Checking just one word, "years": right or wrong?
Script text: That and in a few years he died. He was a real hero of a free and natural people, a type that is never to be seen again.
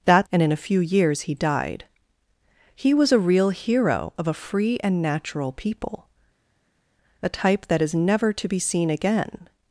right